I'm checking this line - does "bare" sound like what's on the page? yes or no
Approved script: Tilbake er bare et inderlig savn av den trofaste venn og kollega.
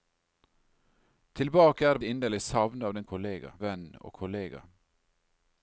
no